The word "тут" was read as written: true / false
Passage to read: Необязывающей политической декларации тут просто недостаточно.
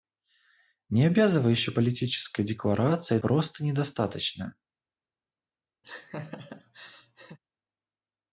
false